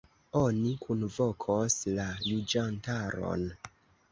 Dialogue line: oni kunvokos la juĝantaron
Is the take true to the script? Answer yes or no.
yes